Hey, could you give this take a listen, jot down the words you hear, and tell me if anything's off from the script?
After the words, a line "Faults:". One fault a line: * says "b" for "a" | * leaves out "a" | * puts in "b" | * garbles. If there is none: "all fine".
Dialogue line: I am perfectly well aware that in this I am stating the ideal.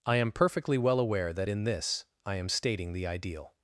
I am perfectly well aware that in this I am stating the ideal.
Faults:
all fine